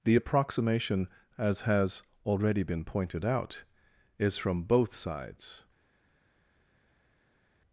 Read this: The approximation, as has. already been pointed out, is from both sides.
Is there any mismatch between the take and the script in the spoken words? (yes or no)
no